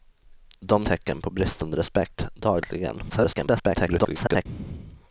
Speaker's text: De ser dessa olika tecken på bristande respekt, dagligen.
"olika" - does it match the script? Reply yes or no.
no